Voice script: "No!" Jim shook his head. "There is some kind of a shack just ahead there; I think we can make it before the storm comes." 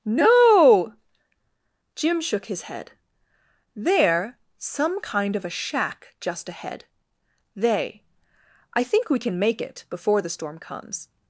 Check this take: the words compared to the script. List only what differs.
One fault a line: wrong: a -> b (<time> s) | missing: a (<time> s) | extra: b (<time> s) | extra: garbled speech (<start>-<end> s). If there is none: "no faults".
missing: is (4.4 s)
wrong: there -> they (7.5 s)